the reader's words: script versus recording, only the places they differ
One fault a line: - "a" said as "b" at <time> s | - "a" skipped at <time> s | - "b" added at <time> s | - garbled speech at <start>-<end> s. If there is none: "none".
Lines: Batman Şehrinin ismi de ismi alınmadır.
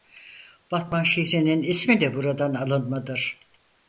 - "ismi" said as "buradan" at 2.1 s